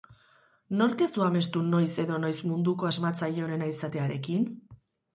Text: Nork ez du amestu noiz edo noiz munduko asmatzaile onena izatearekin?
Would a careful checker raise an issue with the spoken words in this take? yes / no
no